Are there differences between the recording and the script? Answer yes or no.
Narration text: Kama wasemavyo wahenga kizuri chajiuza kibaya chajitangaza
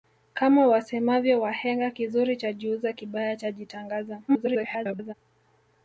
yes